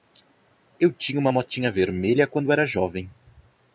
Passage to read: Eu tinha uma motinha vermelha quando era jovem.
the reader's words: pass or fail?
pass